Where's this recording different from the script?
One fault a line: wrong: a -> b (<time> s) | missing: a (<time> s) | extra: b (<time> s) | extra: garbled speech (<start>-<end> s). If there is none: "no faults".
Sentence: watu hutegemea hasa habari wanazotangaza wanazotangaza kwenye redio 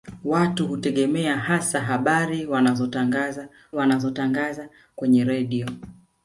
no faults